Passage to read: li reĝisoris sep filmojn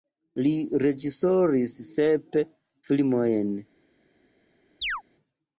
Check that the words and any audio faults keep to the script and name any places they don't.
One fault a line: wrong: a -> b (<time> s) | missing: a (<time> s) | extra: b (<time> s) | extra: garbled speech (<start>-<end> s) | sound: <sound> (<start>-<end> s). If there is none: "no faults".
sound: chirp (4.8-5.0 s)